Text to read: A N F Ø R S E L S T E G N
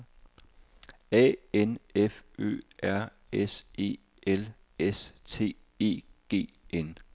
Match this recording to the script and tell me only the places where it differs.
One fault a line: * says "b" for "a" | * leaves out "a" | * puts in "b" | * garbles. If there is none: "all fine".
all fine